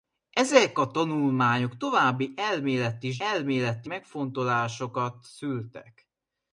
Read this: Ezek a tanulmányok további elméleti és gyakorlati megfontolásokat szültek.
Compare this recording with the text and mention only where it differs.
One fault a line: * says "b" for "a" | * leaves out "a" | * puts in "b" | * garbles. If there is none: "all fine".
* says "elméleti" for "gyakorlati"